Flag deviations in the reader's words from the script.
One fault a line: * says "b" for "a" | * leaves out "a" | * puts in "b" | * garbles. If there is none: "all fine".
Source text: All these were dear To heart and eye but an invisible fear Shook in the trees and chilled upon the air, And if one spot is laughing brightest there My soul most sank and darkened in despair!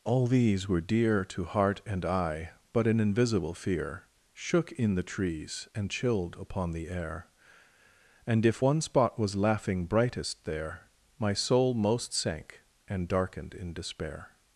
* says "was" for "is"